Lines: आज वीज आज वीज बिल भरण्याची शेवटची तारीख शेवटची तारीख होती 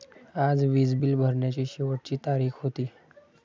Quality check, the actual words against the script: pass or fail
fail